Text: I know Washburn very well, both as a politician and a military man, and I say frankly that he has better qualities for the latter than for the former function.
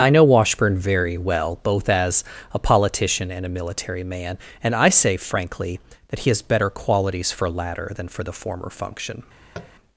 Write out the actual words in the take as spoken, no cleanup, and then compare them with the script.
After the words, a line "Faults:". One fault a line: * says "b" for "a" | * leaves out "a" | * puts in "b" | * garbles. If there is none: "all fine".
I know Washburn very well, both as a politician and a military man, and I say frankly that he has better qualities for latter than for the former function.
Faults:
* leaves out "the"